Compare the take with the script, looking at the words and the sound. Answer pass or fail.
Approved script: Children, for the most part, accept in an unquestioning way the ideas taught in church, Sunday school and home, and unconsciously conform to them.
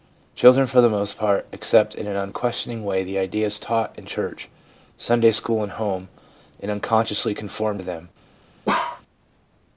fail